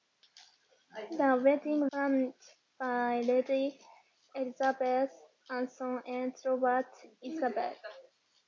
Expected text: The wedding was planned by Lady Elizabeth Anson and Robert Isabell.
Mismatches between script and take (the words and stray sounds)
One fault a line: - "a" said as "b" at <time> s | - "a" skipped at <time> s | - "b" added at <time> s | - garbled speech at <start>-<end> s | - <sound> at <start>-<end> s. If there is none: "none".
- "was" skipped at 1.9 s